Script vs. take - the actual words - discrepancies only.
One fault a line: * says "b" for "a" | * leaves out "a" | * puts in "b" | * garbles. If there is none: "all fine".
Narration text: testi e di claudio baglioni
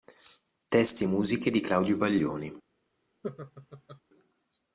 * puts in "musiche"